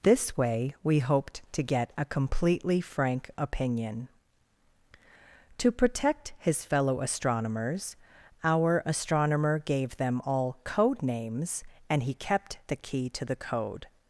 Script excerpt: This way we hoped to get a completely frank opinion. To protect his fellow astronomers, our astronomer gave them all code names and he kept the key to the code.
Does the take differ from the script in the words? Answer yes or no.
no